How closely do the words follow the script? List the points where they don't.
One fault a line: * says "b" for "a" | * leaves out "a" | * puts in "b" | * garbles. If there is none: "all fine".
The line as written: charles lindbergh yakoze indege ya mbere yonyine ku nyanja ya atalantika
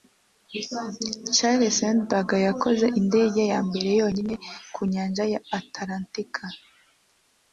all fine